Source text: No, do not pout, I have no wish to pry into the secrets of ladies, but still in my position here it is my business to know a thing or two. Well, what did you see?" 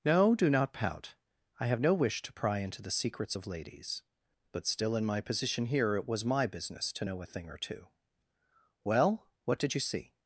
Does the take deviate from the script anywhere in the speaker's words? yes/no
yes